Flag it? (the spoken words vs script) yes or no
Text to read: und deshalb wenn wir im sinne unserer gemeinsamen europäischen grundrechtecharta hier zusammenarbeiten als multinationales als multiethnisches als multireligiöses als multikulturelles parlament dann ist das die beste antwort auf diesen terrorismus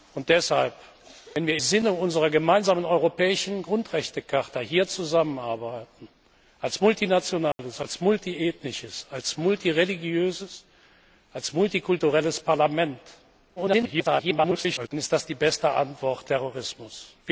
yes